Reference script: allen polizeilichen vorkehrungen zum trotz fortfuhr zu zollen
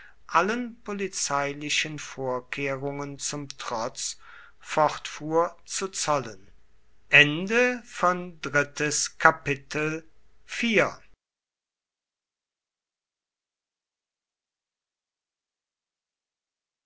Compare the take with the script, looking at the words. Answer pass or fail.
pass